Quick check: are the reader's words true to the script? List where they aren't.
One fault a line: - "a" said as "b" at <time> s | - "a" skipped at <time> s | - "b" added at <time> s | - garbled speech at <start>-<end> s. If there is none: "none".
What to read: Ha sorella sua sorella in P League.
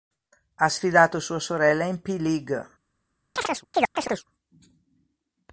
- "sorella" said as "sfidato" at 0.7 s